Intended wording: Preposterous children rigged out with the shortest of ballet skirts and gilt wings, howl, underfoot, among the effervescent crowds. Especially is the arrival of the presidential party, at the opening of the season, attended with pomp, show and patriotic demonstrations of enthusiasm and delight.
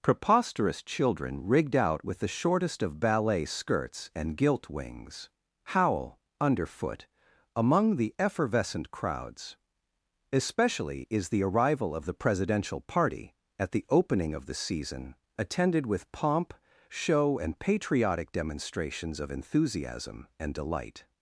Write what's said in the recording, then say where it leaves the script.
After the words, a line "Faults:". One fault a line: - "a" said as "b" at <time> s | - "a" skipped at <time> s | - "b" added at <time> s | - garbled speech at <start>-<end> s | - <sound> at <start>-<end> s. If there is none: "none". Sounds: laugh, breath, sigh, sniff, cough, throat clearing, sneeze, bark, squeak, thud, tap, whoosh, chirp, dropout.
Preposterous children rigged out with the shortest of ballet skirts and gilt wings, howl, underfoot, among the effervescent crowds. Especially is the arrival of the presidential party, at the opening of the season, attended with pomp, show and patriotic demonstrations of enthusiasm and delight.
Faults:
none